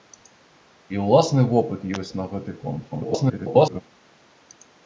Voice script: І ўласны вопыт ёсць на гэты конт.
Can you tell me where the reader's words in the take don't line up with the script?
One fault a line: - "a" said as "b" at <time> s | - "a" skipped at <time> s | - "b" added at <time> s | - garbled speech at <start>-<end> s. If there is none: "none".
- garbled speech at 2.9-3.8 s